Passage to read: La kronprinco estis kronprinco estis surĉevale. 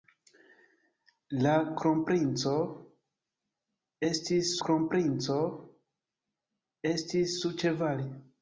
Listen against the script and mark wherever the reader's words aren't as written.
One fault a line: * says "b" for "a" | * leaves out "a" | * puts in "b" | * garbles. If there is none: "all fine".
all fine